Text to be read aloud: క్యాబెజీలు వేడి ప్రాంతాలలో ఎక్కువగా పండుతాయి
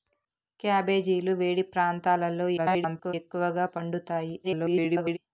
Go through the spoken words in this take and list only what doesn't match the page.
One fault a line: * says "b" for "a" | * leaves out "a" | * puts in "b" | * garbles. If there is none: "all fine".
* garbles
* garbles